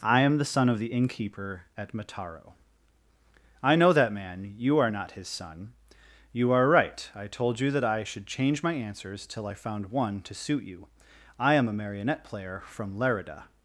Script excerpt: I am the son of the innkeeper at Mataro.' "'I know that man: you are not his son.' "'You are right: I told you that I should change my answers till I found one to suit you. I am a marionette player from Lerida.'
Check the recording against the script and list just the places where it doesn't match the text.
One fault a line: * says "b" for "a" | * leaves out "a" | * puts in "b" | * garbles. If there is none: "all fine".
all fine